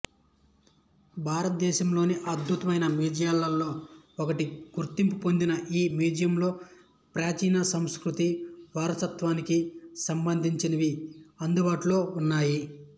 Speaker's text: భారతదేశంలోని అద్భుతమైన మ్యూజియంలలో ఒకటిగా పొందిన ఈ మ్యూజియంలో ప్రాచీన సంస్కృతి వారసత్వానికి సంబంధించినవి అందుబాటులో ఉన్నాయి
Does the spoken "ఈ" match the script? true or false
true